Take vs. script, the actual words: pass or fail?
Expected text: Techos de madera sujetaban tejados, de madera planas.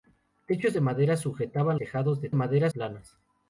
pass